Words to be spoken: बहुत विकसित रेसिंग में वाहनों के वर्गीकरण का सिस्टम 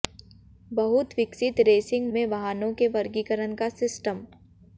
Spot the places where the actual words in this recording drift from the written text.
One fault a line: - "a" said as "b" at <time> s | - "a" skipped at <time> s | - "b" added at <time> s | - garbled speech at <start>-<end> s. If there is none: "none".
none